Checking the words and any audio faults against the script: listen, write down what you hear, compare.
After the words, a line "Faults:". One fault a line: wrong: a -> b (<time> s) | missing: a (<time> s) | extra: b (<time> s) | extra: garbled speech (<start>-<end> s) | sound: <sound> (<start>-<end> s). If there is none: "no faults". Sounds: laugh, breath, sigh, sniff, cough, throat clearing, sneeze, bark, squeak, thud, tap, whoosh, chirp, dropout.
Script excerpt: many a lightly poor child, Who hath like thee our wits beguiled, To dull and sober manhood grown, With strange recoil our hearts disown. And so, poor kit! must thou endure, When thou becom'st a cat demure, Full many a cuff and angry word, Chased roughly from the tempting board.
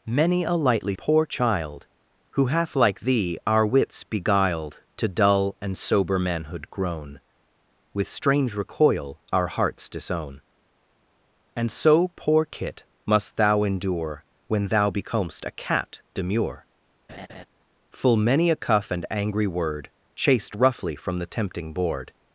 many a lightly poor child, Who hath like thee our wits beguiled, To dull and sober manhood grown, With strange recoil our hearts disown. And so, poor kit! must thou endure, When thou becom'st a cat demure, Full many a cuff and angry word, Chased roughly from the tempting board.
Faults:
sound: laugh (17.1-17.5 s)